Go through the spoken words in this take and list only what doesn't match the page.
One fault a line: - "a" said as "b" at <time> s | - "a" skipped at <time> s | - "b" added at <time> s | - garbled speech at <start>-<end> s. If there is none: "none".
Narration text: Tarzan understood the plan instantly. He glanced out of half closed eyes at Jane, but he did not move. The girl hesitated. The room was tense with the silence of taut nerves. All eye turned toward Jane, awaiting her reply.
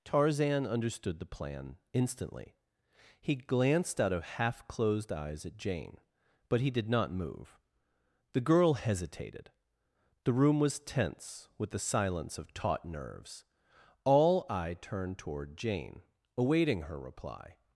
none